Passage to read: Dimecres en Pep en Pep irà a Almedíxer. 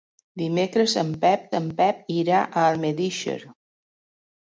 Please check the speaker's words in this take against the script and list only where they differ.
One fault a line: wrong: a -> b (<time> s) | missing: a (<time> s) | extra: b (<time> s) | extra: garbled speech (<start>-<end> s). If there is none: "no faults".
no faults